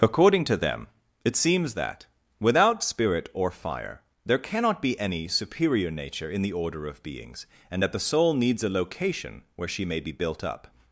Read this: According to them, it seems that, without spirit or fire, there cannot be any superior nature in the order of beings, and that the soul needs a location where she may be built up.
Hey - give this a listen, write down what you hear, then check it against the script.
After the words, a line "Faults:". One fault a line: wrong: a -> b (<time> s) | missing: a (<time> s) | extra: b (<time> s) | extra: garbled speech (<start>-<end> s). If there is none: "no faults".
According to them, it seems that, without spirit or fire, there cannot be any superior nature in the order of beings, and that the soul needs a location where she may be built up.
Faults:
no faults